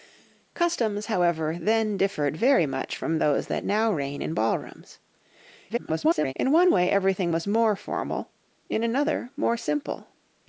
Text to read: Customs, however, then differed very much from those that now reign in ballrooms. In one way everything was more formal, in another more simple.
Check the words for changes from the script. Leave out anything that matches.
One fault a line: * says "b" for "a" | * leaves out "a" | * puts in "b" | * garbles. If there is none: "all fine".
* garbles